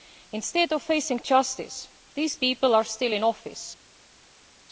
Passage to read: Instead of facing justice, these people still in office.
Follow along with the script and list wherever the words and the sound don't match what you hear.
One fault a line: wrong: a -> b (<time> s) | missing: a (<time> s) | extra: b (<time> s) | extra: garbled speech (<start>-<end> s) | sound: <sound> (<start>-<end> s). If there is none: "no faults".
extra: are (2.7 s)